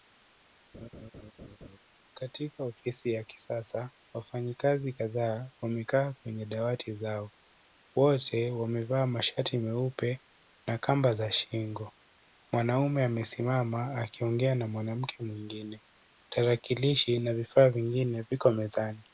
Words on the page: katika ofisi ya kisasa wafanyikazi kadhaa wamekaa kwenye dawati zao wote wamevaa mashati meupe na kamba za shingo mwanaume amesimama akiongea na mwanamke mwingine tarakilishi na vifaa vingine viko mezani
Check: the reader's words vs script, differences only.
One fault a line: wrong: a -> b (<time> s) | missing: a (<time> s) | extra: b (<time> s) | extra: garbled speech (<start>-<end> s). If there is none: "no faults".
no faults